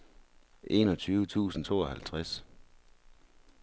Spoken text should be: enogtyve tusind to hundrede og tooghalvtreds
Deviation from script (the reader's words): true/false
true